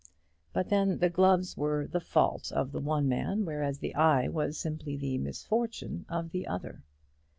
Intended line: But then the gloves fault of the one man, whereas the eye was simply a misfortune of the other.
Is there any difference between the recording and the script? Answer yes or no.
yes